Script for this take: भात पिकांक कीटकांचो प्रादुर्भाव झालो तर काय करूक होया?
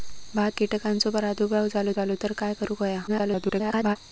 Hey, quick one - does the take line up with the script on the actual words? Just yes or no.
no